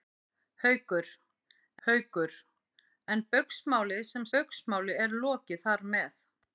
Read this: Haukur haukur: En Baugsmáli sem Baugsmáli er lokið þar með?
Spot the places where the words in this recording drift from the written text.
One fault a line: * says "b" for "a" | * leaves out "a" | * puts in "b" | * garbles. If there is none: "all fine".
all fine